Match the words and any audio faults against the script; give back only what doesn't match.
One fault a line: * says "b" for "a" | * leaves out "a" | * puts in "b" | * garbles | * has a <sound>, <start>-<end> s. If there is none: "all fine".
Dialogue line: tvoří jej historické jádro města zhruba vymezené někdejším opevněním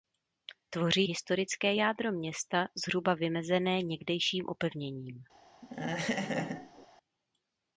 * leaves out "jej"
* has a laugh, 5.6-6.9 s